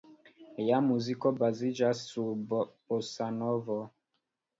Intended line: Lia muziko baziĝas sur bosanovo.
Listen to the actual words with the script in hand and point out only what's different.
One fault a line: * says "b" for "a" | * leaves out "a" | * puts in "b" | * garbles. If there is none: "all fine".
all fine